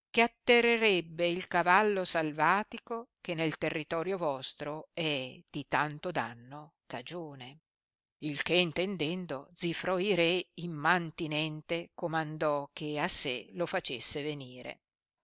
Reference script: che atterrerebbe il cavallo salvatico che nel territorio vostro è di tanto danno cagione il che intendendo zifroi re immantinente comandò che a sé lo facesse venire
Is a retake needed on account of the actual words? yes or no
no